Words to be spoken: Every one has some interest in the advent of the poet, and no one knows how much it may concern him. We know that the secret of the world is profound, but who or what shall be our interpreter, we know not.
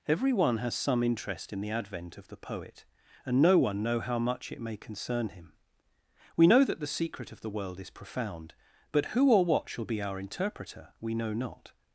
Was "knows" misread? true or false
true